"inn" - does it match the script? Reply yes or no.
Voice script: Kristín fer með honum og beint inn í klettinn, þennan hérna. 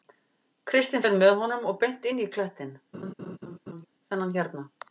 yes